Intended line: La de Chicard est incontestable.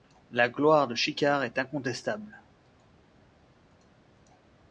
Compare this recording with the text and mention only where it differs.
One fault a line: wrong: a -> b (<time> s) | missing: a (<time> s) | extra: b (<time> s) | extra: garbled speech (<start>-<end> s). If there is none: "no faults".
extra: gloire (0.5 s)